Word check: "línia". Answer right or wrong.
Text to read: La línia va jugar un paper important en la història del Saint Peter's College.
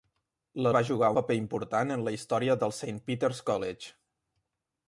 wrong